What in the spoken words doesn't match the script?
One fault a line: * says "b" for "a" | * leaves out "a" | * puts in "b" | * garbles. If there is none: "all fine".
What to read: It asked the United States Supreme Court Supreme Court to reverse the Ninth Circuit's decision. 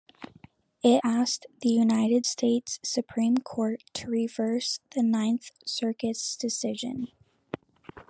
* leaves out "Supreme Court"